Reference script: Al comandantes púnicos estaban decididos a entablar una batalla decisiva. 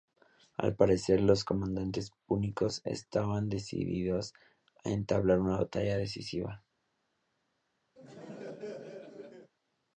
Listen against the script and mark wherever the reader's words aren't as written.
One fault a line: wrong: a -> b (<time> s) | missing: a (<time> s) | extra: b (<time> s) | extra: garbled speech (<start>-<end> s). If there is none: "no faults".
extra: parecer los (0.8 s)